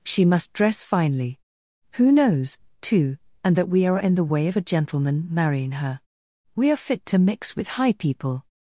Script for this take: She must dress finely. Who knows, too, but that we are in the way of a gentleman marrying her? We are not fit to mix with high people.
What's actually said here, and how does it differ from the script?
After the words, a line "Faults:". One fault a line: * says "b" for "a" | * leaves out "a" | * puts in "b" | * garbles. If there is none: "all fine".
She must dress finely. Who knows, too, and that we are in the way of a gentleman marrying her? We are fit to mix with high people.
Faults:
* says "and" for "but"
* leaves out "not"